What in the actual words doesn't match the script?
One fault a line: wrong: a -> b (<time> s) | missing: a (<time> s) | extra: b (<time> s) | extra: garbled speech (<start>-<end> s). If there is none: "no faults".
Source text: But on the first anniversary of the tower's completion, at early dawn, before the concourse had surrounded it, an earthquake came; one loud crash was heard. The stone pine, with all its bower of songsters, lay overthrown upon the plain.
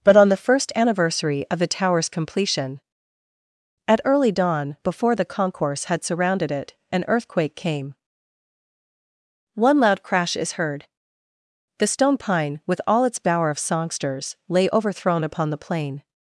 wrong: was -> is (10.3 s)